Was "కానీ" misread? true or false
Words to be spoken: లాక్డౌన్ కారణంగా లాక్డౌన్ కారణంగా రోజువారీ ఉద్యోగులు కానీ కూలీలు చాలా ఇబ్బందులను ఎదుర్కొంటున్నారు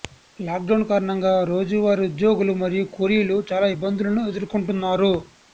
true